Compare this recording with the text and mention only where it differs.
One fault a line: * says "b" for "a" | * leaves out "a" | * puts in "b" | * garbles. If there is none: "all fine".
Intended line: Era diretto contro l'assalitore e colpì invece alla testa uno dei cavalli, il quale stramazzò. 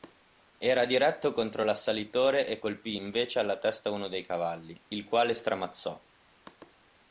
all fine